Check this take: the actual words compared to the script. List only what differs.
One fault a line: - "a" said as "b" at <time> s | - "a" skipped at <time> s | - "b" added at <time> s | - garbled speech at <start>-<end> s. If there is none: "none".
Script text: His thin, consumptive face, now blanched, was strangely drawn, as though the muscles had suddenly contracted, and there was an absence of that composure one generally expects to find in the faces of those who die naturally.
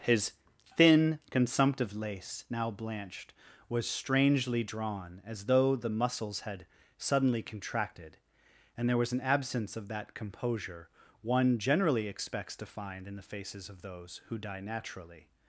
- "face" said as "lace" at 1.9 s